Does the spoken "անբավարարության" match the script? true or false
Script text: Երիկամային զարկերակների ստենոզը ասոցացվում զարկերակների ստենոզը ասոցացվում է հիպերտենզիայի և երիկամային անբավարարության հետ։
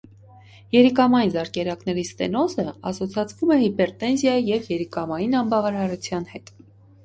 true